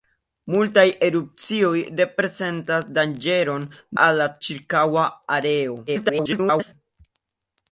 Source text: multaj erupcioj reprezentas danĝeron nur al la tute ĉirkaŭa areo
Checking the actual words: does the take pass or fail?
fail